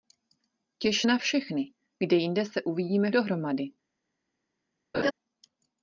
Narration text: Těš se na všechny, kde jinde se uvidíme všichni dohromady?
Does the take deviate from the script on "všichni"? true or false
true